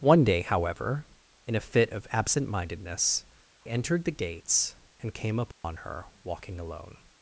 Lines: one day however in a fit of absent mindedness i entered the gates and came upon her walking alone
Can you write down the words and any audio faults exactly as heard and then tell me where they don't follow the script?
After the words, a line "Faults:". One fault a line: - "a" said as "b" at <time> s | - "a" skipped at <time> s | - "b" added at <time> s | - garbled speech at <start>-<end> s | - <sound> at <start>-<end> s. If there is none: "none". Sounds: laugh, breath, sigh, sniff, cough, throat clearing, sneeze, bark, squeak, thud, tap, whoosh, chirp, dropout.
one day however in a fit of absent mindedness entered the gates and came upon her walking alone
Faults:
- "i" skipped at 3.2 s
- dropout at 5.5-5.6 s